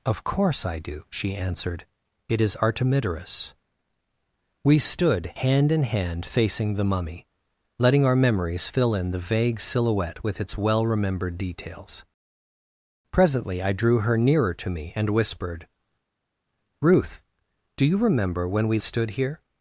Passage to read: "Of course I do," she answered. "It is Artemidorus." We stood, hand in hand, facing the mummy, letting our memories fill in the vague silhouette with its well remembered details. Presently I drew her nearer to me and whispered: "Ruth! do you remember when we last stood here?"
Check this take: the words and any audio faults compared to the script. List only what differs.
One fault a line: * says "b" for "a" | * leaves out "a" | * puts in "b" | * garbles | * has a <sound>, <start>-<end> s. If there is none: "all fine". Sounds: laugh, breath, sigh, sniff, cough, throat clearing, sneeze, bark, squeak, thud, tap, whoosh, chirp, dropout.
* leaves out "last"